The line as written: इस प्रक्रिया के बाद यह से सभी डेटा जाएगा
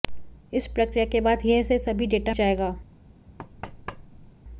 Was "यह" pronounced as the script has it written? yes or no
yes